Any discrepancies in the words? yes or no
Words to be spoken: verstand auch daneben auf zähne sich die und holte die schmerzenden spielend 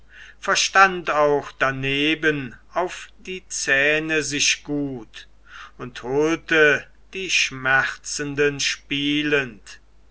yes